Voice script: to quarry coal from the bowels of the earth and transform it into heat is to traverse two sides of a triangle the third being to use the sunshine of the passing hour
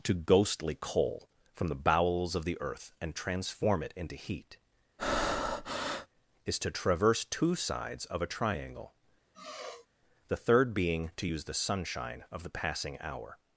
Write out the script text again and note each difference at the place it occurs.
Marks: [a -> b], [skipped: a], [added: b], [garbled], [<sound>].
to [quarry -> ghostly] coal from the bowels of the earth and transform it into heat [breath] is to traverse two sides of a triangle [sigh] the third being to use the sunshine of the passing hour